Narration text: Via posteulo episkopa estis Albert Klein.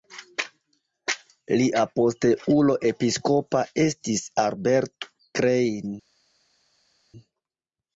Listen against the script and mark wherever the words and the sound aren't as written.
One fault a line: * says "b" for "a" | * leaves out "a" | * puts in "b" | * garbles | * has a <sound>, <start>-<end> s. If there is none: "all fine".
* says "Lia" for "Via"